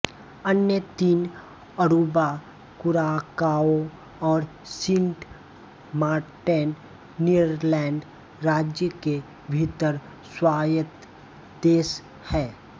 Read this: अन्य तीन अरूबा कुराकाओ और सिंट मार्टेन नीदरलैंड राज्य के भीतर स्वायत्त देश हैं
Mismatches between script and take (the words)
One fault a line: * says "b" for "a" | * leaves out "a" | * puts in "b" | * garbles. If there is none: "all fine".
all fine